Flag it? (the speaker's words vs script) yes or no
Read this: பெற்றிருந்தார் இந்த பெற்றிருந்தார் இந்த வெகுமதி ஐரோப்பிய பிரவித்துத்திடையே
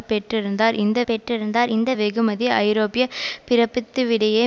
no